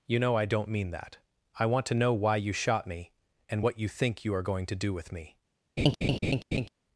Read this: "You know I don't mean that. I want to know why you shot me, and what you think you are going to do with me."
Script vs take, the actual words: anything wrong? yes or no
no